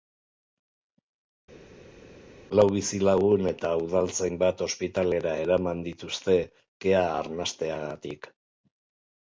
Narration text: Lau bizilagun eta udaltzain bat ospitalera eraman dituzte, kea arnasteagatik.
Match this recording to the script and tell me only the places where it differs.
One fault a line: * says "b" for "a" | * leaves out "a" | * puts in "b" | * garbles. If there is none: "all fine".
all fine